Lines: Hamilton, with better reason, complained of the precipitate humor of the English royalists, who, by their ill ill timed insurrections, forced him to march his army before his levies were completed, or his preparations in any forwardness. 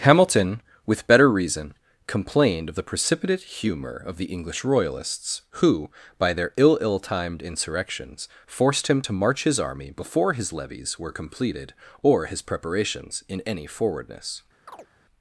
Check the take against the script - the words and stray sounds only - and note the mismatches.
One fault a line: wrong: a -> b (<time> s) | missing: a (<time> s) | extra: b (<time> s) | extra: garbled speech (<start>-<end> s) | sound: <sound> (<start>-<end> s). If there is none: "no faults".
sound: chirp (14.7-14.9 s)